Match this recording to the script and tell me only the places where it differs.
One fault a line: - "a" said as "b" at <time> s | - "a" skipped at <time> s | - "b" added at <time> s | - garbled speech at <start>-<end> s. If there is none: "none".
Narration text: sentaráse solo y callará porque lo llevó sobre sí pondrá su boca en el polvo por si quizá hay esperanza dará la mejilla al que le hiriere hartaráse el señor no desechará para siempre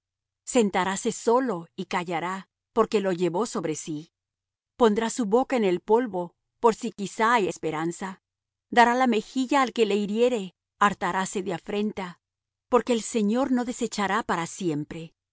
- "de afrenta porque" added at 11.4 s